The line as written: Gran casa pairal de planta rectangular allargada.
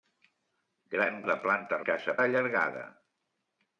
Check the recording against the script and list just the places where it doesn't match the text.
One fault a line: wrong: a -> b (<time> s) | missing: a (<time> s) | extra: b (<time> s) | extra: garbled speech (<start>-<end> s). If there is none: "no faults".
missing: casa pairal (1.2 s)
wrong: rectangular -> casa (1.9 s)